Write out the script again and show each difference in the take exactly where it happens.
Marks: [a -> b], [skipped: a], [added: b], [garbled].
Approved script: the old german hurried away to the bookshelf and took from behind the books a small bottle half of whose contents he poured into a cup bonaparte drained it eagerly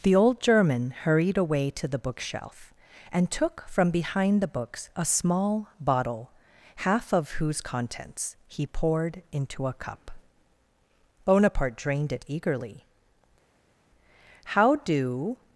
the old german hurried away to the bookshelf and took from behind the books a small bottle half of whose contents he poured into a cup bonaparte drained it eagerly [added: how do]